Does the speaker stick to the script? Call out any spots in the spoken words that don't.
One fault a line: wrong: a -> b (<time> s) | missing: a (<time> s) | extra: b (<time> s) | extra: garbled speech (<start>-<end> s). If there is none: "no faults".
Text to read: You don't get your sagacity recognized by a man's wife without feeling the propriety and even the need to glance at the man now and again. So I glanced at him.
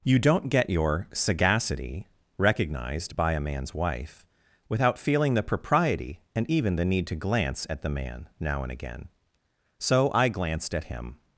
no faults